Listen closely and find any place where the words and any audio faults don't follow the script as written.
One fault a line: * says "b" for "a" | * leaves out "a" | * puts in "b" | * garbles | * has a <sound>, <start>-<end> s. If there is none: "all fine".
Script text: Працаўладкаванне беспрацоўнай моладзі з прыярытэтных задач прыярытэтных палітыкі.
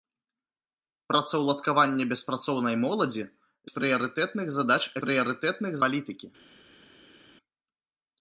all fine